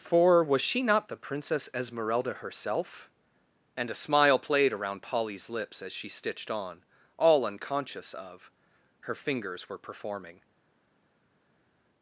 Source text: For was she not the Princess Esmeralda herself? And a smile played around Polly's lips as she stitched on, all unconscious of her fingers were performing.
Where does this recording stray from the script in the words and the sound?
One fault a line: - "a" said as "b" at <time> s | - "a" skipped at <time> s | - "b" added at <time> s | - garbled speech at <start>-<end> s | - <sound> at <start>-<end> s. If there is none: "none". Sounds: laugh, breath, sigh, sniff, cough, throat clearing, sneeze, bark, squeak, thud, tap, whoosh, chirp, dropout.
none